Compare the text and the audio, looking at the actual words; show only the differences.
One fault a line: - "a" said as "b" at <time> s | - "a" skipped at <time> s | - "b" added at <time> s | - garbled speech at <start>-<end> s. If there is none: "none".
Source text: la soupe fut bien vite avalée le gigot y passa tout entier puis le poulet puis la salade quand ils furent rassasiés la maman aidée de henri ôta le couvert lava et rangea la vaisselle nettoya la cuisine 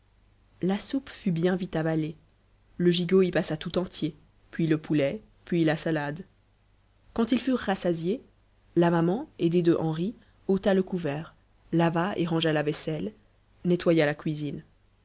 none